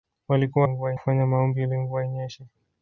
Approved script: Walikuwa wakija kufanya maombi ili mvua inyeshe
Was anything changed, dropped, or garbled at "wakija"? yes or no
yes